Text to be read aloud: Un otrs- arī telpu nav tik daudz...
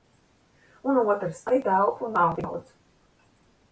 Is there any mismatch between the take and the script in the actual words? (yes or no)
no